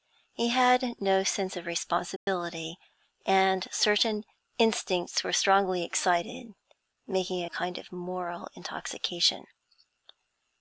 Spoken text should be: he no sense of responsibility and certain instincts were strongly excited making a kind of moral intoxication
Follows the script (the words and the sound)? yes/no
no